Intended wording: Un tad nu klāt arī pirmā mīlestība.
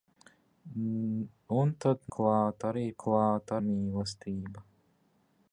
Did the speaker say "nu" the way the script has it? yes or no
no